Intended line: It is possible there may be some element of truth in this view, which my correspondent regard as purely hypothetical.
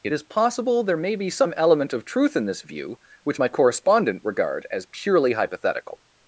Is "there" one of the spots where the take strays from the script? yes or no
no